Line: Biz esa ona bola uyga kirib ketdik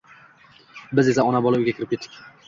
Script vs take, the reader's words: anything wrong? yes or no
no